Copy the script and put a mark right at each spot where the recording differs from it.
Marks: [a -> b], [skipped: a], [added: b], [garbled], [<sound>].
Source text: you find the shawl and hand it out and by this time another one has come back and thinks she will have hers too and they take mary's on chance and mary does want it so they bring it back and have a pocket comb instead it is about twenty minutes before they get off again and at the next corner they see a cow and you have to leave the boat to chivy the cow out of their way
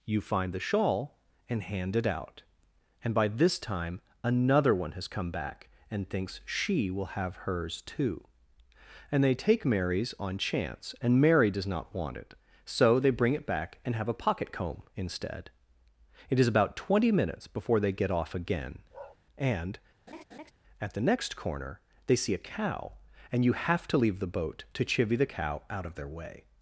you find the shawl and hand it out and by this time another one has come back and thinks she will have hers too and they take mary's on chance and mary does [added: not] want it so they bring it back and have a pocket comb instead it is about twenty minutes before they get off again [bark] and [laugh] at the next corner they see a cow and you have to leave the boat to chivy the cow out of their way